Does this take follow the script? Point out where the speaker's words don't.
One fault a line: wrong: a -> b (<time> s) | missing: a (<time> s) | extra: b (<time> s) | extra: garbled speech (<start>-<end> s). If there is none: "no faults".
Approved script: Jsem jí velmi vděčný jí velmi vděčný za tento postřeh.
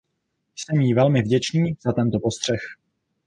missing: jí velmi vděčný (1.8 s)